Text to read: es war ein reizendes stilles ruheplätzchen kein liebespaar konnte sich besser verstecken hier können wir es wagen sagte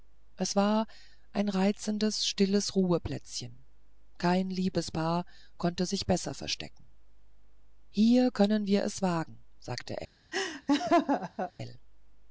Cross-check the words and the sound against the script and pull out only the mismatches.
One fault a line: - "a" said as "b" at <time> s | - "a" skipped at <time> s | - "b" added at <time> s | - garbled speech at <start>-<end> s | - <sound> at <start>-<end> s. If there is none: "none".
- laugh at 10.3-11.5 s